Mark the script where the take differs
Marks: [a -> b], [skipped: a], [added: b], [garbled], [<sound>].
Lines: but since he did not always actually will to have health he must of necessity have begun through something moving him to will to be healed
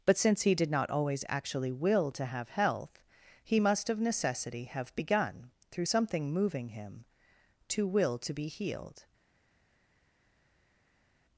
but since he did not always actually will to have health he must of necessity have begun through something moving him to will to be healed